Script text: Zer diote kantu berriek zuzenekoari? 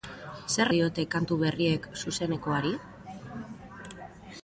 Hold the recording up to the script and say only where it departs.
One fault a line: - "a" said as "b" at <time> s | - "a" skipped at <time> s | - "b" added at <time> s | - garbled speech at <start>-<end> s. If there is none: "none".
none